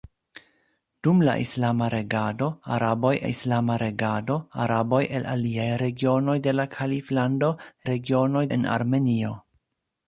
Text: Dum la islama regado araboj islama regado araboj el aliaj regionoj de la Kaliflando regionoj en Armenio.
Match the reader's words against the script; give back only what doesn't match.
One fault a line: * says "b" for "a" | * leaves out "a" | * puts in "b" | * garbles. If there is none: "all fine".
all fine